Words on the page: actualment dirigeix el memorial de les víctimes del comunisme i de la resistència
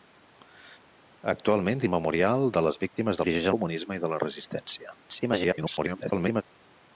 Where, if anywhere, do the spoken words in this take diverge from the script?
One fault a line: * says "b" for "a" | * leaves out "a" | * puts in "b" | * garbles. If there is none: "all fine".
* leaves out "dirigeix"
* says "dirigeix" for "del"
* garbles